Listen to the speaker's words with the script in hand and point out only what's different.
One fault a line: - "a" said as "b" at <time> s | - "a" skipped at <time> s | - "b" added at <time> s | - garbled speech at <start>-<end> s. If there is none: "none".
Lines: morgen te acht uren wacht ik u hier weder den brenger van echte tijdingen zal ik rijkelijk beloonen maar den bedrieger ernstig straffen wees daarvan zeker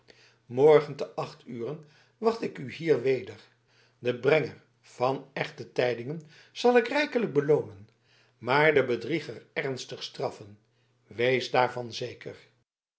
none